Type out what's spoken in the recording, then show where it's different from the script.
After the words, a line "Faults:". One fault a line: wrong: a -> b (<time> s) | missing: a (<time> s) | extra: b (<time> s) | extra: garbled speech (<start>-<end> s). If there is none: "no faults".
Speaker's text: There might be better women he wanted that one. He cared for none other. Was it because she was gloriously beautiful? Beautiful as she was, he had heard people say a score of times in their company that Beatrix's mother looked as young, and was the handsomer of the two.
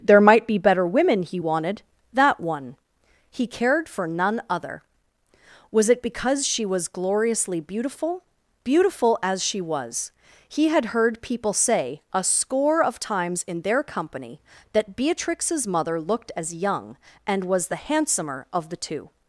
There might be better women he wanted that one. He cared for none other. Was it because she was gloriously beautiful? Beautiful as she was, he had heard people say a score of times in their company that Beatrix's mother looked as young, and was the handsomer of the two.
Faults:
no faults